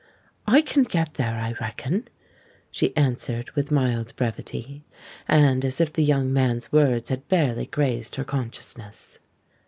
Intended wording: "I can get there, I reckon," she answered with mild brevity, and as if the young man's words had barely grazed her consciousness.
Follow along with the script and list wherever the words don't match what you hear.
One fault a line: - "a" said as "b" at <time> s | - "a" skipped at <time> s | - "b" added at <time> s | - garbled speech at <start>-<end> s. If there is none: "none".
none